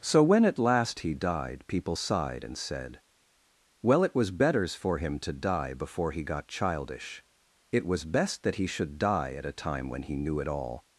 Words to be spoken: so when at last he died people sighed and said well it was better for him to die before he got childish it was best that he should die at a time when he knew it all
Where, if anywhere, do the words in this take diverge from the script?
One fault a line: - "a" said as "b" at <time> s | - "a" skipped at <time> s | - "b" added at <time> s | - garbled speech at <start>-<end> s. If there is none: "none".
- "better" said as "betters" at 4.3 s